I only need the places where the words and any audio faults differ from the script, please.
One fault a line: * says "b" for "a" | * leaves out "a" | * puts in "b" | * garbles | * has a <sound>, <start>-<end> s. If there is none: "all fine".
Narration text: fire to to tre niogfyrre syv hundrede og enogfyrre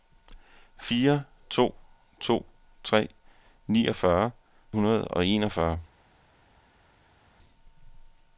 * leaves out "syv"